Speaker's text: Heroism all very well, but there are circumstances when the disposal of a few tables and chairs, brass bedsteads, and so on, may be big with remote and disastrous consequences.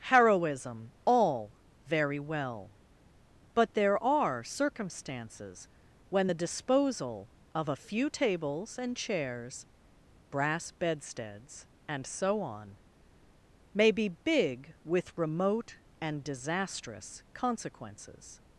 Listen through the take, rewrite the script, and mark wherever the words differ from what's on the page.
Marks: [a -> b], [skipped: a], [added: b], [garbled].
Heroism all very well, but there are circumstances when the disposal of a few tables and chairs, brass bedsteads, and so on, may be big with remote and disastrous consequences.